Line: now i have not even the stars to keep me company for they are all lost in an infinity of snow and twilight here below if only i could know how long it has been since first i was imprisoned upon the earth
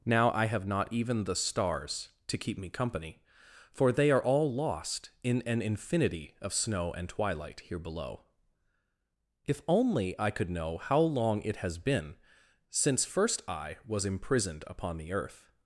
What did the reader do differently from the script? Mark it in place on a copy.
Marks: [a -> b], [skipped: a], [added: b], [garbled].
now i have not even the stars to keep me company for they are all lost in an infinity of snow and twilight here below if only i could know how long it has been since first i was imprisoned upon the earth